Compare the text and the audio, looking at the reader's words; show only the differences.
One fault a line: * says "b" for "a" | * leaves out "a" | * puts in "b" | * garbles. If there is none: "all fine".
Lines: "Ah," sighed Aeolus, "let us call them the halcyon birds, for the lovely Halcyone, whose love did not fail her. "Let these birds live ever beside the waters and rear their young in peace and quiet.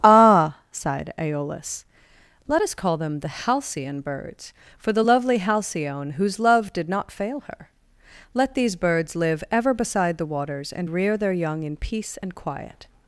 all fine